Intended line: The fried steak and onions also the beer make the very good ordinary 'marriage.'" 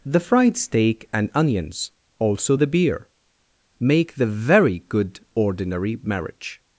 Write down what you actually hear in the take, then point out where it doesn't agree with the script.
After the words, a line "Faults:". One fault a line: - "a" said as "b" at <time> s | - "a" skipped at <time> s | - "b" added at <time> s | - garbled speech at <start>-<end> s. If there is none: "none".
The fried steak and onions also the beer make the very good ordinary 'marriage.'"
Faults:
none